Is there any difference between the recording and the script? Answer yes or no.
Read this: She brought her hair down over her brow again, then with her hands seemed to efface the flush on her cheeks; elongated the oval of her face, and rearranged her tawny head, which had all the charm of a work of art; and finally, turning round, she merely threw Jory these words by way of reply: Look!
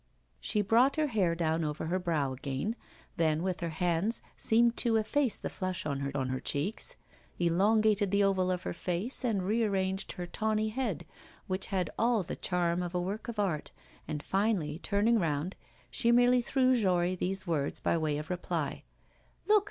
yes